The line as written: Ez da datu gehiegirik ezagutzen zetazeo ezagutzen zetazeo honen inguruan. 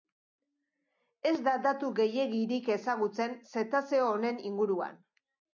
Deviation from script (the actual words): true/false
true